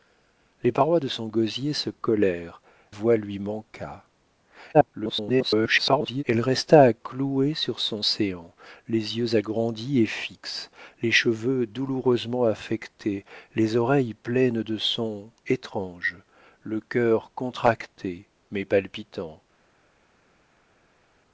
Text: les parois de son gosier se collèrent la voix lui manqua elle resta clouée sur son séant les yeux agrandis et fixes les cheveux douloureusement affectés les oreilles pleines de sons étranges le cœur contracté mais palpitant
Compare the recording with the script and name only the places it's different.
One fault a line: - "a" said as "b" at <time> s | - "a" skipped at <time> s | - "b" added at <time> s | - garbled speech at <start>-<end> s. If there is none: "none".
- "la" skipped at 2.6 s
- garbled speech at 4.7-6.2 s